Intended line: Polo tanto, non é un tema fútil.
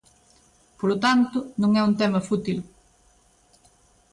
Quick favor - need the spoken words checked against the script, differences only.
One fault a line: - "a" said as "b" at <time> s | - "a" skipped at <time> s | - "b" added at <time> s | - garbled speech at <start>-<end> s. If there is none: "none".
none